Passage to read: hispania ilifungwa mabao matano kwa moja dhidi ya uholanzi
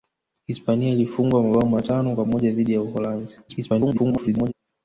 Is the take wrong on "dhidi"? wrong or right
right